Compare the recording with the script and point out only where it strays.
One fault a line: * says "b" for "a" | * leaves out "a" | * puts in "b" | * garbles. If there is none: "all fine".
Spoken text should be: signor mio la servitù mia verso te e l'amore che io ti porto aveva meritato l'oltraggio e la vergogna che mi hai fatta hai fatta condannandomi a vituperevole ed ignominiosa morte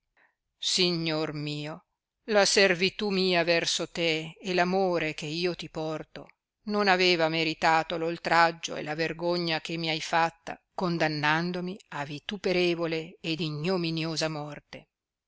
* puts in "non"
* leaves out "hai fatta"